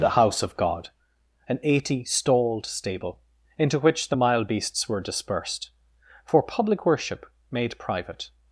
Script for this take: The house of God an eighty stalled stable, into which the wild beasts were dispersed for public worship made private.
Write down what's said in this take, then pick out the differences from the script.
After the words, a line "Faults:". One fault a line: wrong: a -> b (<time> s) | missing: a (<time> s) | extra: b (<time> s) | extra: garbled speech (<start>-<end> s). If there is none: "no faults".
The house of God an eighty stalled stable, into which the mild beasts were dispersed for public worship made private.
Faults:
wrong: wild -> mild (4.1 s)